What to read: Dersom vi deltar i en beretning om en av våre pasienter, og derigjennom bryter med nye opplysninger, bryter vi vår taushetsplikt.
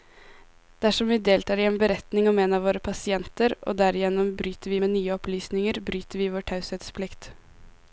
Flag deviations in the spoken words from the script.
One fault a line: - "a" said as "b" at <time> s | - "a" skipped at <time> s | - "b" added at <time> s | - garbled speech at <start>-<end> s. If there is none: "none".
none